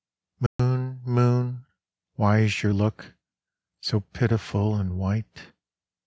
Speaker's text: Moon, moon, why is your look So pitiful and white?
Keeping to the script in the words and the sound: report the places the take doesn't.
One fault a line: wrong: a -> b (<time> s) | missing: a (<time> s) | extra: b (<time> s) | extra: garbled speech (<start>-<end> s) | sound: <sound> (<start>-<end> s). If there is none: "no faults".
sound: dropout (0.5-0.6 s)